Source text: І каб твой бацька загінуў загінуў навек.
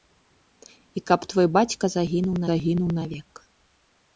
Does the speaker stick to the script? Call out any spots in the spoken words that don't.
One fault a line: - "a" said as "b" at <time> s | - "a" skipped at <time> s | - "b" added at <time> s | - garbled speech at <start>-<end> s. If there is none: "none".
none